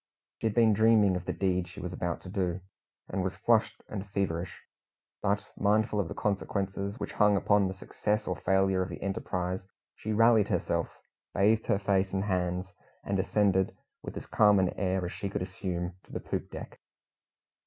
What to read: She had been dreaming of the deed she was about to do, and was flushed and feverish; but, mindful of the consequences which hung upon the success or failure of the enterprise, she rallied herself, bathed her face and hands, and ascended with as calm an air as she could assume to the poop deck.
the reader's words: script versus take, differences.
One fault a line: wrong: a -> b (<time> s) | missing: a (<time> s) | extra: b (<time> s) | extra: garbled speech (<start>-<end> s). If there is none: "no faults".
no faults